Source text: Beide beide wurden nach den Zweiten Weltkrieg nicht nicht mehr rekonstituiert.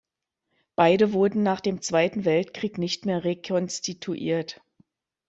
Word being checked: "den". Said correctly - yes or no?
no